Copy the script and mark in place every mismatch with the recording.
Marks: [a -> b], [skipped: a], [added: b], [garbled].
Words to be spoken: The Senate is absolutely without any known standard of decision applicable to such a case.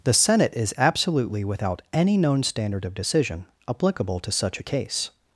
The Senate is absolutely without any known standard of decision applicable to such a case.